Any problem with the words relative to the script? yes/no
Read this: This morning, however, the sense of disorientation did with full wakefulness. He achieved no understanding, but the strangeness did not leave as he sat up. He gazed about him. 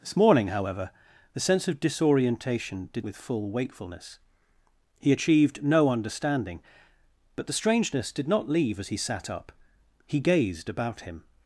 no